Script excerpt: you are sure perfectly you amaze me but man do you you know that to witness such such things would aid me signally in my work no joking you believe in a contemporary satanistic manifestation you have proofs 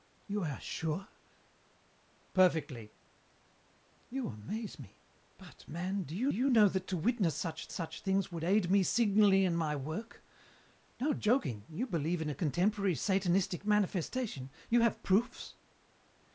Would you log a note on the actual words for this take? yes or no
no